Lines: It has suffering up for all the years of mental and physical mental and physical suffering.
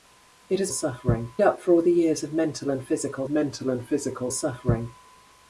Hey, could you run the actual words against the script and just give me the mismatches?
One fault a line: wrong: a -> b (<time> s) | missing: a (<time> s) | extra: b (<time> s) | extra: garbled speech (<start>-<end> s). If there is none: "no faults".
no faults